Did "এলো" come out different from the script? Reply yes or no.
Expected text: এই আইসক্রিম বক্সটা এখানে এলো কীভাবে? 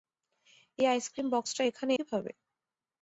yes